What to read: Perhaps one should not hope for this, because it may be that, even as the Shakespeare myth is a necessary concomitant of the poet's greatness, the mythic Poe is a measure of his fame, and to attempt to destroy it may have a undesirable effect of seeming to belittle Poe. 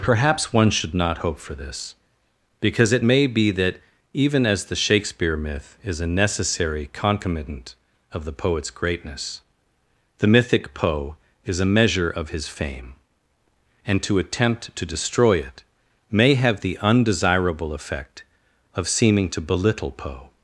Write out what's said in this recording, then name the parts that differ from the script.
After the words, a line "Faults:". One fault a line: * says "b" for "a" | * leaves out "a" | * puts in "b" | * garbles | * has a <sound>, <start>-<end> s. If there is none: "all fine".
Perhaps one should not hope for this, because it may be that, even as the Shakespeare myth is a necessary concomitant of the poet's greatness, the mythic Poe is a measure of his fame, and to attempt to destroy it may have the undesirable effect of seeming to belittle Poe.
Faults:
* says "the" for "a"